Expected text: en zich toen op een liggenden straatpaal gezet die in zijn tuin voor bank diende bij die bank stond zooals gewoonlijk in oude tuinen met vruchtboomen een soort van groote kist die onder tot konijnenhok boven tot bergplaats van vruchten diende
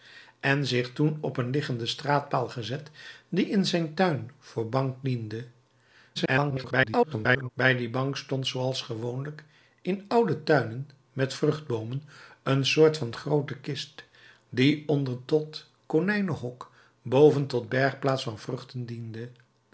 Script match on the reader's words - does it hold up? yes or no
no